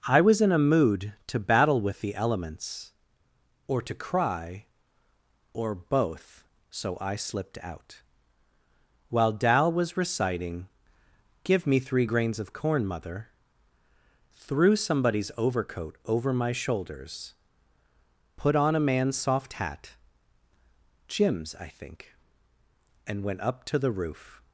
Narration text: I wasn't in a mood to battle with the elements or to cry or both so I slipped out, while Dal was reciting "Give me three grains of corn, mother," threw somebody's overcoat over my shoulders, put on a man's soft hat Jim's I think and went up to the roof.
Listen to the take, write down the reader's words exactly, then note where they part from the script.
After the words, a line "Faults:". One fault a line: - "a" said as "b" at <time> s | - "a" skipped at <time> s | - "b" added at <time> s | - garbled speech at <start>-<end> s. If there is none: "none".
I was in a mood to battle with the elements or to cry or both so I slipped out, while Dal was reciting "Give me three grains of corn, mother," threw somebody's overcoat over my shoulders, put on a man's soft hat Jim's I think and went up to the roof.
Faults:
- "wasn't" said as "was" at 0.2 s